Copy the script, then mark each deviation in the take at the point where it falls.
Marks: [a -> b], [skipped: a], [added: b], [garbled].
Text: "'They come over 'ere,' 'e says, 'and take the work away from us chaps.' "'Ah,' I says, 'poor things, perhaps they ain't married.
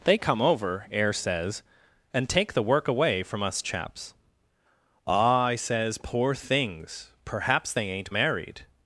"'They come over ['ere,' 'e -> air] says, 'and take the work away from us chaps.' "'Ah,' I says, 'poor things, perhaps they ain't married.